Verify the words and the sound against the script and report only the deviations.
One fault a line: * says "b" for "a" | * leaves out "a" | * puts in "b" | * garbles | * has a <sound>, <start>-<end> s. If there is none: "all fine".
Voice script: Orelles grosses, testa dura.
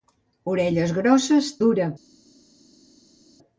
* leaves out "testa"